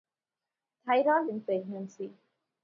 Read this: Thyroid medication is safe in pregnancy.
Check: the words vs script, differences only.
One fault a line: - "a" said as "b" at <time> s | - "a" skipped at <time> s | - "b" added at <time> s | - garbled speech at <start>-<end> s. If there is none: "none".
- "medication is safe" skipped at 1.3 s